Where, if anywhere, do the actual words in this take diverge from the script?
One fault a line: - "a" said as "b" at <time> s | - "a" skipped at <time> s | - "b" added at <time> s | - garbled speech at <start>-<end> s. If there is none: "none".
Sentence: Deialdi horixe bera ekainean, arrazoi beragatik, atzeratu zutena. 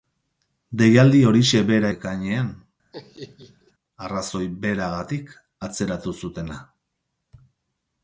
none